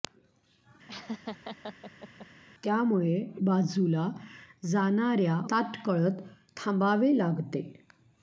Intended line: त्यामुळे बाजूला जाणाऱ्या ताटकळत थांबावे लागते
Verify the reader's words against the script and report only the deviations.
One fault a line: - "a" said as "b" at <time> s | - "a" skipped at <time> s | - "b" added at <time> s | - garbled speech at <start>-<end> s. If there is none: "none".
none